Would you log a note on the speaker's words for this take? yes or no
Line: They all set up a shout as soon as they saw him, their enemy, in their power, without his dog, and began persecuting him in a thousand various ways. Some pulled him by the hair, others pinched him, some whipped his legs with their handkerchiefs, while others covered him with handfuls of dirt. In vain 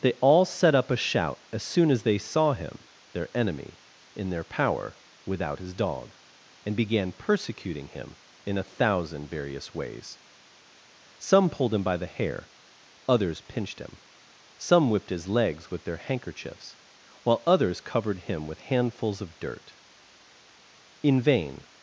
no